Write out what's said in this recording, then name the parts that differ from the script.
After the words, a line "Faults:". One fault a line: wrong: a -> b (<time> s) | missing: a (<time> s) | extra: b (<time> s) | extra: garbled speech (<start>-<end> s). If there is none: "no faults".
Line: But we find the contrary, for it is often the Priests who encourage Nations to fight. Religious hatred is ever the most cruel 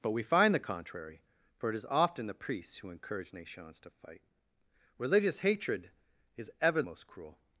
But we find the contrary, for it is often the Priests who encourage Nations to fight. Religious hatred is ever most cruel
Faults:
missing: the (6.8 s)